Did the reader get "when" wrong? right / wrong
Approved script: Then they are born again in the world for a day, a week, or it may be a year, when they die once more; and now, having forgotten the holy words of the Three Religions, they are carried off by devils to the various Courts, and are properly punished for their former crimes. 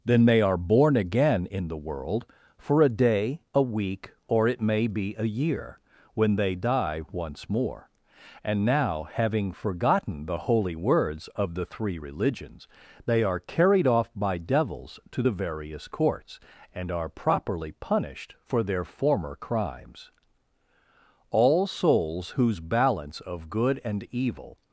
right